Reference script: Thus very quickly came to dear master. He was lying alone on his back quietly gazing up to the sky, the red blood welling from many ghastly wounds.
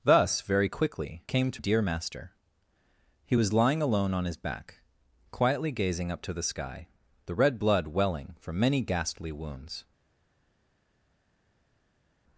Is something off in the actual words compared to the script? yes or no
no